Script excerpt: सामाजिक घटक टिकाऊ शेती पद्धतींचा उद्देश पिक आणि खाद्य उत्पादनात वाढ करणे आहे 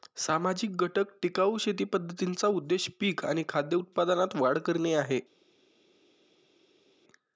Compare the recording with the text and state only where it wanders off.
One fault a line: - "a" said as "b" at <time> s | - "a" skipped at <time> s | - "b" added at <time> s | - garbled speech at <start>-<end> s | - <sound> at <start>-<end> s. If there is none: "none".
none